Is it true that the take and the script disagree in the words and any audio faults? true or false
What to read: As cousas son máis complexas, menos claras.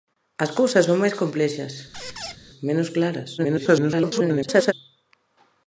true